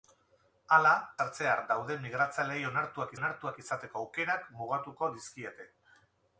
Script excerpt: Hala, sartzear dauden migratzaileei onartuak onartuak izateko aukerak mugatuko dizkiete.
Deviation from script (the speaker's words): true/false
false